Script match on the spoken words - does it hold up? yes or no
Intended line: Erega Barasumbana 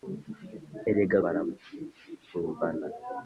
yes